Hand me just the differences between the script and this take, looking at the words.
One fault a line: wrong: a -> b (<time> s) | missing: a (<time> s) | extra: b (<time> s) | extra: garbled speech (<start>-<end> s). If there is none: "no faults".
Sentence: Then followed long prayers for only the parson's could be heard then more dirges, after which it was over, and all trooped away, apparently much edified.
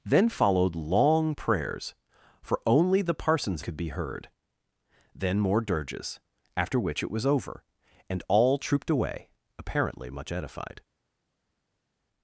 no faults